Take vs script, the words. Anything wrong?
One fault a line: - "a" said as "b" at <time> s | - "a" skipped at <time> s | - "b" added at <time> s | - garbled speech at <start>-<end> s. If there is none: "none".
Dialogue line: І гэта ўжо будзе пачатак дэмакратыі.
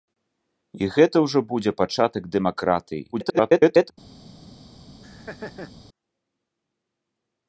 - garbled speech at 3.1-3.9 s